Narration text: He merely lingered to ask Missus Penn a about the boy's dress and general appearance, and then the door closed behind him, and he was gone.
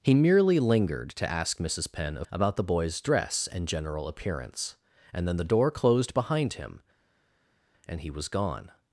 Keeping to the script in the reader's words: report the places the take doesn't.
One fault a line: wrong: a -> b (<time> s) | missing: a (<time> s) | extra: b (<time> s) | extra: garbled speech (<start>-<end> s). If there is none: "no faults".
no faults